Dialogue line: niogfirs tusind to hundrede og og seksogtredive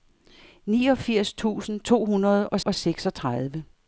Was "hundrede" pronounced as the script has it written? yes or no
yes